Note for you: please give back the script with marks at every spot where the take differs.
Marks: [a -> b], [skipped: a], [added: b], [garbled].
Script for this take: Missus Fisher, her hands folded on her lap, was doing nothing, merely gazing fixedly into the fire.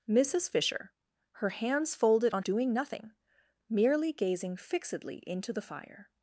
Missus Fisher, her hands folded on [skipped: her lap, was] doing nothing, merely gazing fixedly into the fire.